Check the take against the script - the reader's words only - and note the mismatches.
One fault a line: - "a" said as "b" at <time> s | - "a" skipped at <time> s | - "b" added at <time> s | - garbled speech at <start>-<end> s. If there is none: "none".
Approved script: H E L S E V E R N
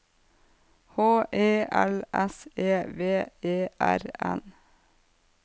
none